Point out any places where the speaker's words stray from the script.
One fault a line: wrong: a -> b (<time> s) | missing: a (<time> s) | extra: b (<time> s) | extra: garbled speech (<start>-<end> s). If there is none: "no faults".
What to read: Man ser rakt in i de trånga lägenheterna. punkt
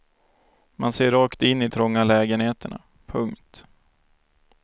missing: de (1.7 s)